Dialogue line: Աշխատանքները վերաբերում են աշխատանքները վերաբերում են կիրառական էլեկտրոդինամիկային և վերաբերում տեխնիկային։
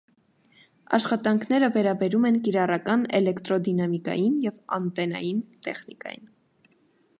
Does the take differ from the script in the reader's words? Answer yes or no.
yes